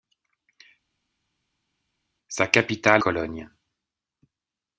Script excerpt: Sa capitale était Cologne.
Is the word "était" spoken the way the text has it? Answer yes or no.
no